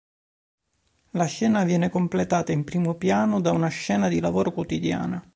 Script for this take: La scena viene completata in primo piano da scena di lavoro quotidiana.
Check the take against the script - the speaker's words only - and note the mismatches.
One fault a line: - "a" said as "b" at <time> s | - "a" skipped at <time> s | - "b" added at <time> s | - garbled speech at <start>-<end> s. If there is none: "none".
- "una" added at 3.5 s